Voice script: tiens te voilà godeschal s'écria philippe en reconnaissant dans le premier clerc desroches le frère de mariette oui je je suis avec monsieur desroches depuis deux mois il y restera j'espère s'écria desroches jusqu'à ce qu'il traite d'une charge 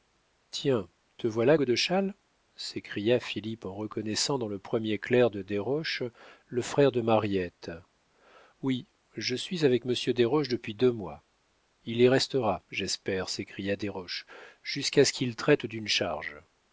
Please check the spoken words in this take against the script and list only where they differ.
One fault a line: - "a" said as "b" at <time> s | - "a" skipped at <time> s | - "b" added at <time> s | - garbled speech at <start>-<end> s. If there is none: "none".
- "de" added at 5.3 s
- "je" skipped at 9.4 s